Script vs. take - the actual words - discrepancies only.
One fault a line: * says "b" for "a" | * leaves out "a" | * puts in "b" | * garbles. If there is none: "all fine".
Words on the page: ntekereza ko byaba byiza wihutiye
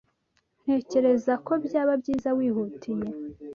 all fine